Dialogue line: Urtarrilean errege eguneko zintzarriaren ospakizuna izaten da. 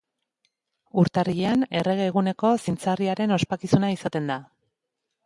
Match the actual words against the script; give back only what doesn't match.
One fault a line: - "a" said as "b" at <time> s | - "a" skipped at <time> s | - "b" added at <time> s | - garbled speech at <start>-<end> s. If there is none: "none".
none